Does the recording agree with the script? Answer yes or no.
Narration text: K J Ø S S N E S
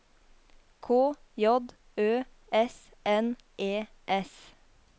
no